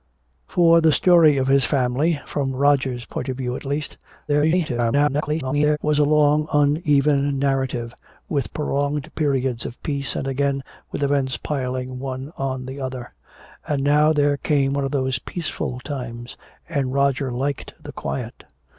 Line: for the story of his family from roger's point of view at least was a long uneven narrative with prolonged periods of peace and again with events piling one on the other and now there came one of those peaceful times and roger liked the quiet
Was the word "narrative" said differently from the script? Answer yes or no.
no